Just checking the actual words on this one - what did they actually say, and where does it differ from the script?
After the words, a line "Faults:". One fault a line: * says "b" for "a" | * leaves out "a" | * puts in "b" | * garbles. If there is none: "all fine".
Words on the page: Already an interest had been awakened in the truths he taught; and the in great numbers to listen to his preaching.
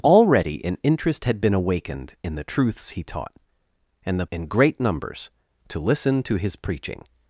Already an interest had been awakened in the truths he taught; and the in great numbers to listen to his preaching.
Faults:
all fine